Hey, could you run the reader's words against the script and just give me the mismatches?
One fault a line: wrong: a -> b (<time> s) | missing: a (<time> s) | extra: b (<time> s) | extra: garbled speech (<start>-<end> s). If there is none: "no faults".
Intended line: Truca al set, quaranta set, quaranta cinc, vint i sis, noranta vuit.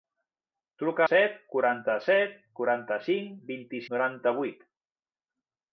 missing: al (1.0 s)
missing: sis (3.9 s)